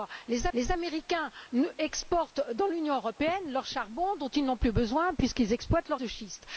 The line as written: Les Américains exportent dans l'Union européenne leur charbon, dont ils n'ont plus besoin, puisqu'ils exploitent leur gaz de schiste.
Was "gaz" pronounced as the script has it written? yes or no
no